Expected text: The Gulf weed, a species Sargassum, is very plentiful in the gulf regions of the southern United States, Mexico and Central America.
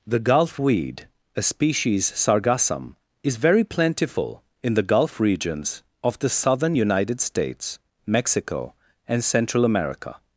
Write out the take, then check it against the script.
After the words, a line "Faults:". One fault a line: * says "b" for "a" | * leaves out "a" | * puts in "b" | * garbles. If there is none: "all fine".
The Gulf weed, a species Sargassum, is very plentiful in the gulf regions of the southern United States, Mexico and Central America.
Faults:
all fine